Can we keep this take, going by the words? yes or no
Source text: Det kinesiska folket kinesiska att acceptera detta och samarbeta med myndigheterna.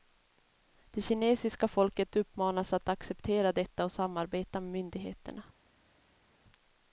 no